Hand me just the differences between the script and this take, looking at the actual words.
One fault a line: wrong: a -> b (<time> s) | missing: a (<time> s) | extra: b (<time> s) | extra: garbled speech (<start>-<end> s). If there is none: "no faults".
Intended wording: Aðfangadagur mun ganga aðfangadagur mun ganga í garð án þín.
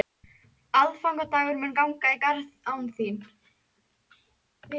missing: aðfangadagur mun ganga (2.1 s)